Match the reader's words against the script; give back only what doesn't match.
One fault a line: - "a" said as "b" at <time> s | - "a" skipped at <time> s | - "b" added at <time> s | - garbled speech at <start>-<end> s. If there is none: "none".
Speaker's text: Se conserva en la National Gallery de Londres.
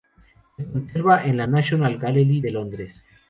none